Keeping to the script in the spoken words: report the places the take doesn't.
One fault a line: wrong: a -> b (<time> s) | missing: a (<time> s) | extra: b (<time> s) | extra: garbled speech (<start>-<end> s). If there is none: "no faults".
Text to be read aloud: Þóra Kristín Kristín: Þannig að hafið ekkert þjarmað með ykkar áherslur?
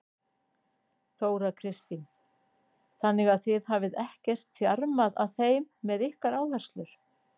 missing: Kristín (2.0 s)
extra: þið (3.5 s)
extra: að þeim (5.3 s)